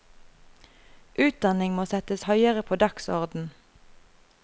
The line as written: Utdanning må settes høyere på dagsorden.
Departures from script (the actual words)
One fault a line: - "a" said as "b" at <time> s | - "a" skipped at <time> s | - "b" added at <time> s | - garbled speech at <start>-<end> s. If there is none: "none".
none